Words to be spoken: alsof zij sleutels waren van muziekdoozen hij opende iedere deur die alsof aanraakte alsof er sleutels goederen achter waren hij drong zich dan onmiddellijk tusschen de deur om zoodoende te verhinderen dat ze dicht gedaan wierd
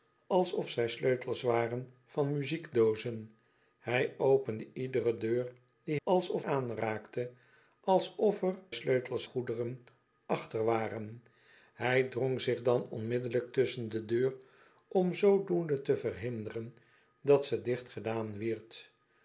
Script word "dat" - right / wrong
right